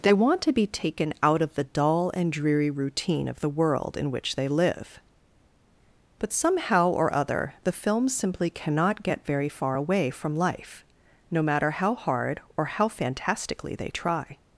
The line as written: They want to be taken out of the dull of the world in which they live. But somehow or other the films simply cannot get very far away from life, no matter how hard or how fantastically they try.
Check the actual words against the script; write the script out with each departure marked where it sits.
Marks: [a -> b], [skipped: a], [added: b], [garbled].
They want to be taken out of the dull [added: and dreary routine] of the world in which they live. But somehow or other the films simply cannot get very far away from life, no matter how hard or how fantastically they try.